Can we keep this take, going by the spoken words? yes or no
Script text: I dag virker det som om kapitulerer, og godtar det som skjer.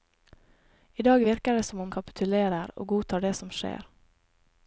yes